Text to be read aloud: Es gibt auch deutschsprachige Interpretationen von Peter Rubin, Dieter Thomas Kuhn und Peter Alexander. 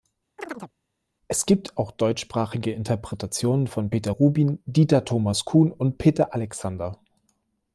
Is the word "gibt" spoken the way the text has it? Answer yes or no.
yes